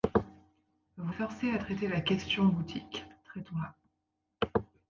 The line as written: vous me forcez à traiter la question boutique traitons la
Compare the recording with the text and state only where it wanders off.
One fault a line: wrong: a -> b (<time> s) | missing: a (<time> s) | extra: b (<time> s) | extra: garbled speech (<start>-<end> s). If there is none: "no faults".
missing: me (1.1 s)